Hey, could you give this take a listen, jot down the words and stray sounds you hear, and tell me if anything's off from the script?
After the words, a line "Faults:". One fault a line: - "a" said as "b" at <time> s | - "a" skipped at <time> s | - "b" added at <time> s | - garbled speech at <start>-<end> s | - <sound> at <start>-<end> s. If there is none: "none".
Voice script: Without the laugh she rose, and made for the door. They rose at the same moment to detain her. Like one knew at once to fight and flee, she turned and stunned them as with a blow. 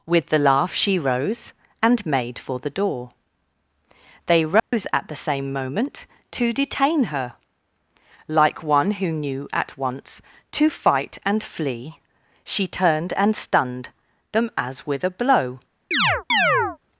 With the laugh she rose, and made for the door. They rose at the same moment to detain her. Like one who knew at once to fight and flee, she turned and stunned them as with a blow.
Faults:
- "Without" said as "With" at 0.1 s
- dropout at 4.6-4.7 s
- "who" added at 8.9 s
- chirp at 15.9-16.8 s